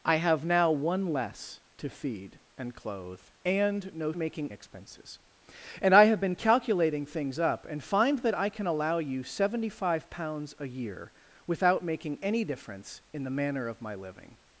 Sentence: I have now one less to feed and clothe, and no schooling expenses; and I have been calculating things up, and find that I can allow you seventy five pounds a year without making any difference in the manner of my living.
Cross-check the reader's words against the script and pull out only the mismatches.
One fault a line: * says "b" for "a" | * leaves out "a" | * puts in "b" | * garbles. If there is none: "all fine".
* says "making" for "schooling"